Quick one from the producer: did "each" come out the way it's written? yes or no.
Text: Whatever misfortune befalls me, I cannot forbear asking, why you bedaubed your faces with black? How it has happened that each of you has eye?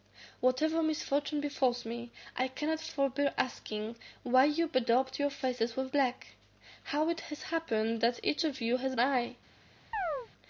yes